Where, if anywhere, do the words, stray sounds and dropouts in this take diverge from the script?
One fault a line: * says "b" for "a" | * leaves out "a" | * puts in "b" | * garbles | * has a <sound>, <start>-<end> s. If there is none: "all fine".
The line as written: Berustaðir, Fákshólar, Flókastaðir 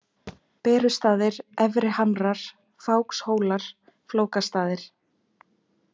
* has a thud, 0.3-0.4 s
* puts in "Efri Hamrar"